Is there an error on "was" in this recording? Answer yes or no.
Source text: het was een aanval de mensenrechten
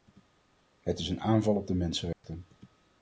yes